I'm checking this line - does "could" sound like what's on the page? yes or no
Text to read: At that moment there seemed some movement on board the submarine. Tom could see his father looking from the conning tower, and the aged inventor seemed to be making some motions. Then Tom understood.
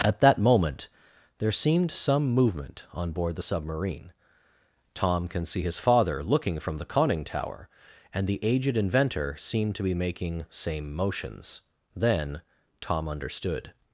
no